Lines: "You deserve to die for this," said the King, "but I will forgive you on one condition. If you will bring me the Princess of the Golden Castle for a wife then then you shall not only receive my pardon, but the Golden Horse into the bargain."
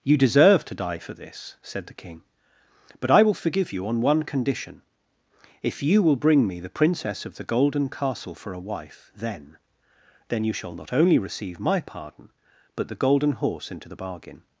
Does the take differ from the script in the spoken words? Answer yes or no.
no